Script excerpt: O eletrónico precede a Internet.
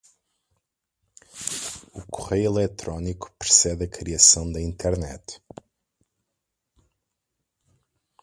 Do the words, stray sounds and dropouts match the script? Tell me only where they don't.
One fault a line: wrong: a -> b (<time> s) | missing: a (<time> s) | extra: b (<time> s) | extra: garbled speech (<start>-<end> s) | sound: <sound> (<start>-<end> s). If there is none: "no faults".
extra: correio (2.1 s)
extra: criação da (3.9 s)